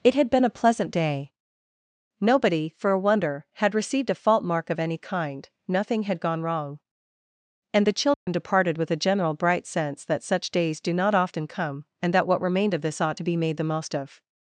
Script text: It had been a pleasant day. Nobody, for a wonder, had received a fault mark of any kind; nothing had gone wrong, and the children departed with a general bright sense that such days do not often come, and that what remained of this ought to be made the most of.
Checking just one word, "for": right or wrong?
right